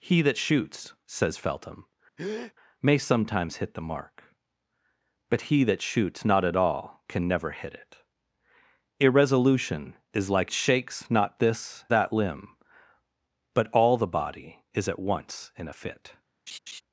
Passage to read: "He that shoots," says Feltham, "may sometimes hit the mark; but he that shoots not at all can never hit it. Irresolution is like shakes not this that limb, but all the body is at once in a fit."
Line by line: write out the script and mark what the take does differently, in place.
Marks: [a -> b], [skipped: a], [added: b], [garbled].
"He that shoots," says Feltham, "may sometimes hit the mark; but he that shoots not at all can never hit it. Irresolution is like shakes not this that limb, but all the body is at once in a fit."